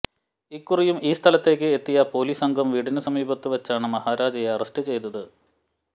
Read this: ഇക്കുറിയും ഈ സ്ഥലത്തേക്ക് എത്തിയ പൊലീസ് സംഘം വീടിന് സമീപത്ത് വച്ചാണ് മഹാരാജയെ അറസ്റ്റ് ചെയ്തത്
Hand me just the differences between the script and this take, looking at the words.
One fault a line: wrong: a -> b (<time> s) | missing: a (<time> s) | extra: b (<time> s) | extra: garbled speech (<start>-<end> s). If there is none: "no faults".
no faults